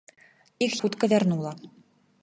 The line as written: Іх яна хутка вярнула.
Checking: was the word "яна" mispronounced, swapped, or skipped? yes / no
yes